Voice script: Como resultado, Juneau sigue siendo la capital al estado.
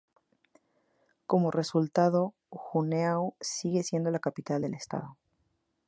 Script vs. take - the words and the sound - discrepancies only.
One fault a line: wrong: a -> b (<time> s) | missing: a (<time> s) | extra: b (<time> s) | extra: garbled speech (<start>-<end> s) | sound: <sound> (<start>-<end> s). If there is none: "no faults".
wrong: al -> del (4.6 s)